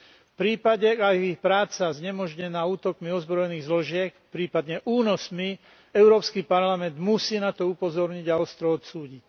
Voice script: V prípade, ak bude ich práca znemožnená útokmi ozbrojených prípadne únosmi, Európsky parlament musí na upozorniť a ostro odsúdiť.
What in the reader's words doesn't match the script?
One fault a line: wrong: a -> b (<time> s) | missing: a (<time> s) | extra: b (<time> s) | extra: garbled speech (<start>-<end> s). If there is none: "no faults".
wrong: bude -> je (1.1 s)
extra: zložiek (3.6 s)
extra: to (7.5 s)